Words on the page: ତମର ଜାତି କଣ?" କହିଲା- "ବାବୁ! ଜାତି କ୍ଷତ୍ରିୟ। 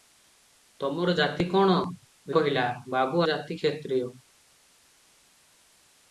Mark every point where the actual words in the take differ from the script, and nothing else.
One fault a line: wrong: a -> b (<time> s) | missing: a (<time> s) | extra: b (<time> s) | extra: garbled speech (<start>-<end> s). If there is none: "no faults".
no faults